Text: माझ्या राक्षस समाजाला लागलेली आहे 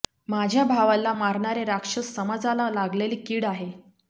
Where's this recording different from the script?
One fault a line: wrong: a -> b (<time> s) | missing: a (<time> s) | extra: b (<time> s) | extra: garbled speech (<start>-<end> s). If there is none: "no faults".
extra: भावाला मारणारे (0.7 s)
extra: कीड (3.2 s)